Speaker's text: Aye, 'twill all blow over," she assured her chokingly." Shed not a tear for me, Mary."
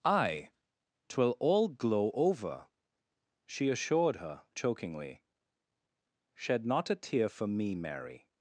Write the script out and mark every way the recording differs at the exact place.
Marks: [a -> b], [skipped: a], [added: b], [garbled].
Aye, 'twill all [blow -> glow] over," she assured her chokingly." Shed not a tear for me, Mary."